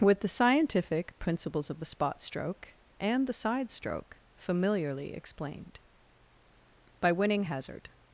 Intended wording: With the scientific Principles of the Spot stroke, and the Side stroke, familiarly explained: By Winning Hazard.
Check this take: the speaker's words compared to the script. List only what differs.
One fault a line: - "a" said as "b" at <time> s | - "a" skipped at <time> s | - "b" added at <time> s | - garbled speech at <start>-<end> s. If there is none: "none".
none